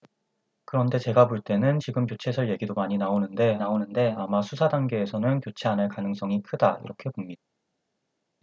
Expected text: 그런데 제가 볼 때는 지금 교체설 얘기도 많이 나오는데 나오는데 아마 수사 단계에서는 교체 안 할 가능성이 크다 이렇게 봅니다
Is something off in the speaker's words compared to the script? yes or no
no